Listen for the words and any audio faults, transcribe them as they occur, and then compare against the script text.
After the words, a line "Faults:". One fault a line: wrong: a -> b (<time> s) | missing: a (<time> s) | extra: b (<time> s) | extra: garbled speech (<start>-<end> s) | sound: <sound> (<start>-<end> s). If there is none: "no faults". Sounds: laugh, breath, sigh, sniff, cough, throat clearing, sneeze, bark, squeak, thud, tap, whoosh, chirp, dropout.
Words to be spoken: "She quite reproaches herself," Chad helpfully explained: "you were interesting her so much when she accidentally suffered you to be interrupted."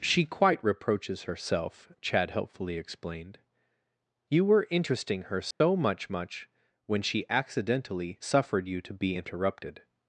"She quite reproaches herself," Chad helpfully explained: "you were interesting her so much much when she accidentally suffered you to be interrupted."
Faults:
sound: dropout (5.5-5.6 s)
extra: much (6.1 s)